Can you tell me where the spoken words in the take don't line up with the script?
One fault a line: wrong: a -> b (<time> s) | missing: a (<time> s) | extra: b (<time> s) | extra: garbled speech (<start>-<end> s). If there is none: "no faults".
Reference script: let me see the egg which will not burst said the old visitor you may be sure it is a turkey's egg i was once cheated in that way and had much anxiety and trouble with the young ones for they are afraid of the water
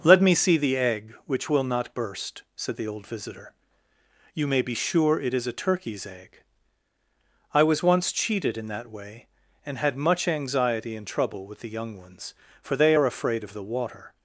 no faults